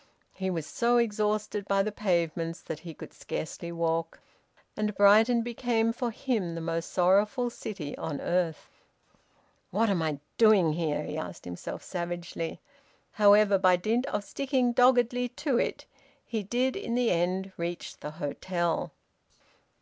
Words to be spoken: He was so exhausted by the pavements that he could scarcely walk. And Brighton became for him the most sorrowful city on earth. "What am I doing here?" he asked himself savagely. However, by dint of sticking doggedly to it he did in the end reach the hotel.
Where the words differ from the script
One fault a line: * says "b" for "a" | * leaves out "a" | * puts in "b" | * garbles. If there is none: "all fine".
all fine